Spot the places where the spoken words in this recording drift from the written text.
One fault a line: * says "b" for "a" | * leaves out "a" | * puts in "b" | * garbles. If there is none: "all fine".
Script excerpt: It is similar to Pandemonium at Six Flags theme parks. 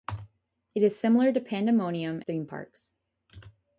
* leaves out "at Six Flags"